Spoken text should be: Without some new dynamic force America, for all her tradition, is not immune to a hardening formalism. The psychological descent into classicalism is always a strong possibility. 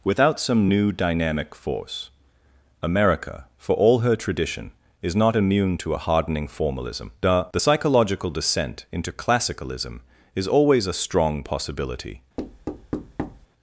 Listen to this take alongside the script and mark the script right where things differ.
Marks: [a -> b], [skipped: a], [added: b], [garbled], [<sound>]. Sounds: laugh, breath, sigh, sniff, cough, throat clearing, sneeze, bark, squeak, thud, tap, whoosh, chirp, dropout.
Without some new dynamic force America, for all her tradition, is not immune to a hardening formalism. The [added: The] psychological descent into classicalism is always a strong possibility. [thud]